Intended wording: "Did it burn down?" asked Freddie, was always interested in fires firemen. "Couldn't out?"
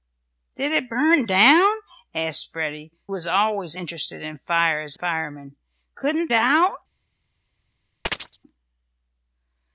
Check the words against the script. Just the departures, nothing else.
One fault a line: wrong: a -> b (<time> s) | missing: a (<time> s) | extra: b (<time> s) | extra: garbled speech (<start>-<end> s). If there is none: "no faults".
no faults